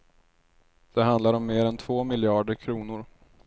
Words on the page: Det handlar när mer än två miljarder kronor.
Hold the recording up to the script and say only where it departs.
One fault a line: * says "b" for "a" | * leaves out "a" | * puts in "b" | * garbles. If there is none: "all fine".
* says "om" for "när"